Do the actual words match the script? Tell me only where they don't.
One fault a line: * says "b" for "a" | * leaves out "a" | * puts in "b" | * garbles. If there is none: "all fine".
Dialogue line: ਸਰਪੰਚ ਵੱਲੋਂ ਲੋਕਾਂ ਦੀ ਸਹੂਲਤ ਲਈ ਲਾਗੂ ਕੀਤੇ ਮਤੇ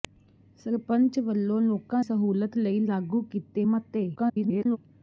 * leaves out "ਦੀ"
* garbles